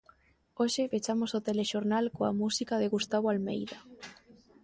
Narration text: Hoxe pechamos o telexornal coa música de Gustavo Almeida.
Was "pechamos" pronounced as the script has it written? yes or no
yes